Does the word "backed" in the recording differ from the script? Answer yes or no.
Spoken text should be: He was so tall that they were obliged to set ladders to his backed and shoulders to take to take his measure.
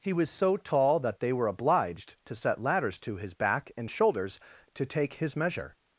yes